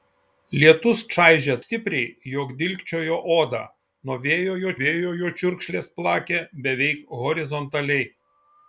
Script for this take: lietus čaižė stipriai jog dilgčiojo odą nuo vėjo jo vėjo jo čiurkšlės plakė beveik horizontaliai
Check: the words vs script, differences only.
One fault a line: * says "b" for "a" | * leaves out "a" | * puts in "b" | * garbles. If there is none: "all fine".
all fine